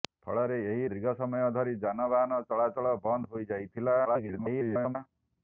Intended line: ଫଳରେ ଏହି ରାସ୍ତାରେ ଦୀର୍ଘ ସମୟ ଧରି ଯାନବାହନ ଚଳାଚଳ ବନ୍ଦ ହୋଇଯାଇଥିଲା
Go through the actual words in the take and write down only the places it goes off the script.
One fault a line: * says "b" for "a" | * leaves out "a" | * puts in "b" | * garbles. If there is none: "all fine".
* leaves out "ରାସ୍ତାରେ"
* garbles